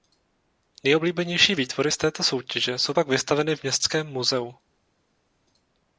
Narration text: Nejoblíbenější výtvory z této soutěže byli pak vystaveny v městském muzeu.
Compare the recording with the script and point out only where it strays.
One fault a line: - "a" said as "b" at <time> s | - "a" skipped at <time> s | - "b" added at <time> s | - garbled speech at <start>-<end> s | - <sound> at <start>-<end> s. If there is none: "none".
- "byli" said as "jsou" at 2.8 s